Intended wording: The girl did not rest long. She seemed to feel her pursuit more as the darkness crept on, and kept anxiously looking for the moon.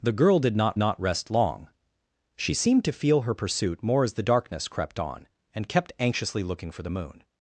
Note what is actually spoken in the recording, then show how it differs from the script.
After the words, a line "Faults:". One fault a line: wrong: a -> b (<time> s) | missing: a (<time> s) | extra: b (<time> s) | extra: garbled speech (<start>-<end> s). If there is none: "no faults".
The girl did not not rest long. She seemed to feel her pursuit more as the darkness crept on, and kept anxiously looking for the moon.
Faults:
extra: not (0.8 s)